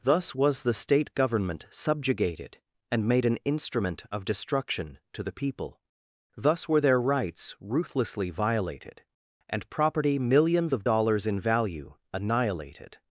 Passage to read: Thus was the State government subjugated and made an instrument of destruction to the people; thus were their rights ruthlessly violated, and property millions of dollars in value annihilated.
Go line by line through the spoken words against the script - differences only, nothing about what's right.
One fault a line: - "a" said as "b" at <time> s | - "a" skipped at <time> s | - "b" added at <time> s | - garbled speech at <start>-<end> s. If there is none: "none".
none